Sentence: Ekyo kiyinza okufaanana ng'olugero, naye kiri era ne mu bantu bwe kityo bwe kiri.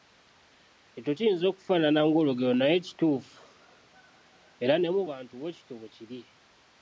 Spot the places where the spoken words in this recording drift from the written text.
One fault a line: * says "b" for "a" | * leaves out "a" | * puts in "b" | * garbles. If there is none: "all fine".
* says "kituufu" for "kiri"